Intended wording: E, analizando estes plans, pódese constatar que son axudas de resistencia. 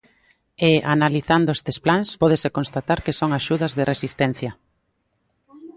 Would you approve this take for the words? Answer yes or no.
yes